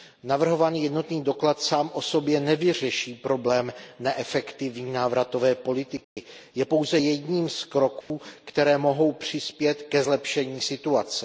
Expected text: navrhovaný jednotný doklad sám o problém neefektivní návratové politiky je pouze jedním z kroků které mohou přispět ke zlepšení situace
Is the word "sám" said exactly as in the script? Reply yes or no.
yes